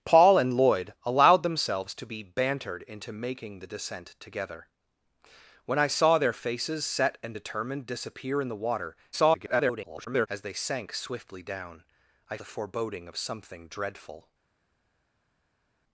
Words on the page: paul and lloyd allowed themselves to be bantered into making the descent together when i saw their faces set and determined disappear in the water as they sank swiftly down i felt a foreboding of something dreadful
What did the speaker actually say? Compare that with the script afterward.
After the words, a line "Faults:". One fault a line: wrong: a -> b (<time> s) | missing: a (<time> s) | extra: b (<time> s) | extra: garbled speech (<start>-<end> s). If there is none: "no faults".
paul and lloyd allowed themselves to be bantered into making the descent together when i saw their faces set and determined disappear in the water [garbled] as they sank swiftly down i a foreboding of something dreadful
Faults:
extra: garbled speech (9.1-10.3 s)
missing: felt (12.4 s)